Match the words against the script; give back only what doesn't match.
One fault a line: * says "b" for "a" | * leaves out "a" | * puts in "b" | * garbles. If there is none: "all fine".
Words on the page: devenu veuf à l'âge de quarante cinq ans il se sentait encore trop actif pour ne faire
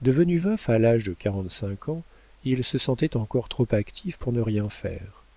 * puts in "rien"